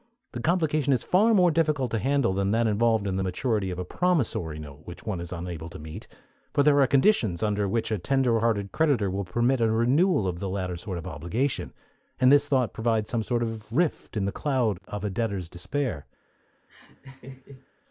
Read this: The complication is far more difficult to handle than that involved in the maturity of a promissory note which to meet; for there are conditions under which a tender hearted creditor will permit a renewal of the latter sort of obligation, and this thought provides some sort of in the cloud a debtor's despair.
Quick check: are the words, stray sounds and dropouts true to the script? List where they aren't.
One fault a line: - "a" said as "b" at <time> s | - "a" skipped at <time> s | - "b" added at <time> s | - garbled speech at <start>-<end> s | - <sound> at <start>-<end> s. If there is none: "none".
- "one is unable" added at 5.0 s
- "rift" added at 13.7 s
- "of" added at 14.9 s
- laugh at 16.7-17.7 s